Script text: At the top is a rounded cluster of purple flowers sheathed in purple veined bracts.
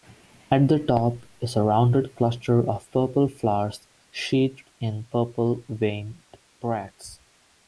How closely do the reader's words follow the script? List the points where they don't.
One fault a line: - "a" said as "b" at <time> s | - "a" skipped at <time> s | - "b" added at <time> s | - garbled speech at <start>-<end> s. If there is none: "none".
none